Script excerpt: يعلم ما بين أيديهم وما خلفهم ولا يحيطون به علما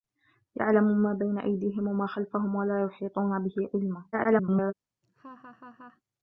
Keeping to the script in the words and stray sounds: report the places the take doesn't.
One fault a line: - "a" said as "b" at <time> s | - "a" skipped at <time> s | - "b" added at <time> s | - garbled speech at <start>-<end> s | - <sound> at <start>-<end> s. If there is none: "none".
- garbled speech at 4.1-4.7 s
- laugh at 5.0-6.0 s